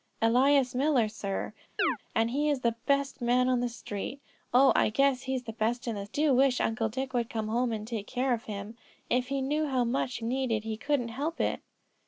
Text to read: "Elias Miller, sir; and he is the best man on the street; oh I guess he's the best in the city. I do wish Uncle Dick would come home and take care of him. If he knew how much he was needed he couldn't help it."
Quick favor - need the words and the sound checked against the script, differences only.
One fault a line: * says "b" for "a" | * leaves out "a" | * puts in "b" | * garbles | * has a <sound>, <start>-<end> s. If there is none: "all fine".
* has a chirp, 1.8-2.0 s
* leaves out "city I"
* leaves out "was"